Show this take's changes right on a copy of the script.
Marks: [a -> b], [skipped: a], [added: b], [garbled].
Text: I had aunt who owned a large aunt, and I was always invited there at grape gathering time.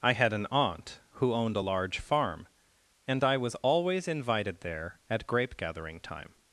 I had [added: an] aunt who owned a large [aunt, -> farm] and I was always invited there at grape gathering time.